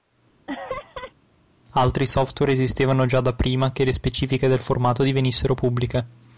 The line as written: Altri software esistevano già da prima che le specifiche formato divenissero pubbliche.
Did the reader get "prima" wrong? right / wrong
right